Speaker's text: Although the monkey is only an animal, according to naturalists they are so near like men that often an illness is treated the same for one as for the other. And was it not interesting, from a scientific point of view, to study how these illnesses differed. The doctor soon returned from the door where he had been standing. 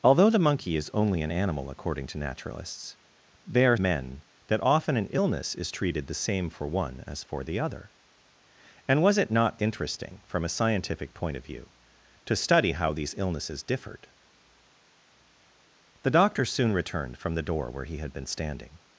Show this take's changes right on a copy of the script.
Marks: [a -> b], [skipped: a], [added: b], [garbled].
Although the monkey is only an animal, according to naturalists they are [skipped: so near like] men that often an illness is treated the same for one as for the other. And was it not interesting, from a scientific point of view, to study how these illnesses differed. The doctor soon returned from the door where he had been standing.